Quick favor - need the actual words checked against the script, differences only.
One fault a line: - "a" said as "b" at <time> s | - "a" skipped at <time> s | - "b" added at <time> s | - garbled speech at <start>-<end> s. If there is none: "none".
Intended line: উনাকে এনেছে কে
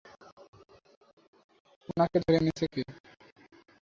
- "ধরে" added at 2.2 s